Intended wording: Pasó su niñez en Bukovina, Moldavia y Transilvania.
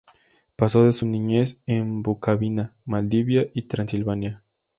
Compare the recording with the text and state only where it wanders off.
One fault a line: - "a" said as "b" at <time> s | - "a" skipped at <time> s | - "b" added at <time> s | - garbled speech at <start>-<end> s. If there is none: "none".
none